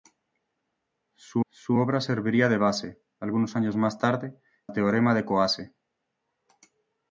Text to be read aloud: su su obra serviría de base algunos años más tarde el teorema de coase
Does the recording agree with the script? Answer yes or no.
yes